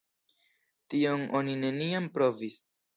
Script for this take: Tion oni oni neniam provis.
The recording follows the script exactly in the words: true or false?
false